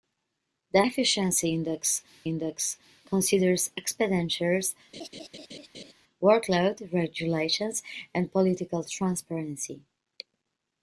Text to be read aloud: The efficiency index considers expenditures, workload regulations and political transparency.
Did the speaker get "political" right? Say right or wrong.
right